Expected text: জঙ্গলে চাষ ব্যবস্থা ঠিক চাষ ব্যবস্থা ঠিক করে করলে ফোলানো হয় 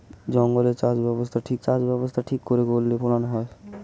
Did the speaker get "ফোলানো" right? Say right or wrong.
right